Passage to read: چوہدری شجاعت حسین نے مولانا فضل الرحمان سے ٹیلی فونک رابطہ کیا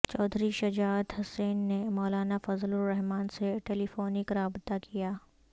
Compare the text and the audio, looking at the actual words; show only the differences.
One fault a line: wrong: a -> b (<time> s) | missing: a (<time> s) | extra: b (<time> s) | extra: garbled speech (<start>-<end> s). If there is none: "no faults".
no faults